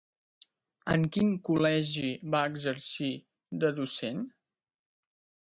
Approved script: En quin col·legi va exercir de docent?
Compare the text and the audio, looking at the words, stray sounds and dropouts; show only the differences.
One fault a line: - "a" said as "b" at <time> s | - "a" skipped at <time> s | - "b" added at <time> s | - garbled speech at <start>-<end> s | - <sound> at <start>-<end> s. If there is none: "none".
none